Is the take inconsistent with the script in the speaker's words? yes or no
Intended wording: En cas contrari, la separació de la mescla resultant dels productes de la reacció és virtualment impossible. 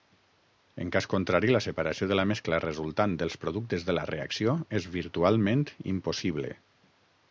no